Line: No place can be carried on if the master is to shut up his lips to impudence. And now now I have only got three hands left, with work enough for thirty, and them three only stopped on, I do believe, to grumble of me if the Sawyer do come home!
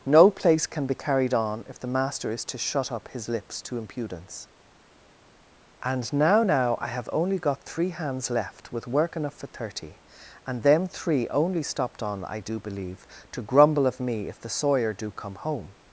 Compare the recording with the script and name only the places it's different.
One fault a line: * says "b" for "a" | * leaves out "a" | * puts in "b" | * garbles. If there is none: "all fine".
all fine